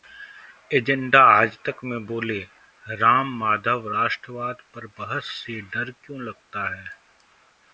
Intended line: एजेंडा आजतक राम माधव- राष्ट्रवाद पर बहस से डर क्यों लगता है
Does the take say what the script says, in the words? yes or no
no